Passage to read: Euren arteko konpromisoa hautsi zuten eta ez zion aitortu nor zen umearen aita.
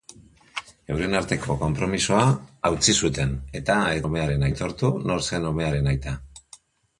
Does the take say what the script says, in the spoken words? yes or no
no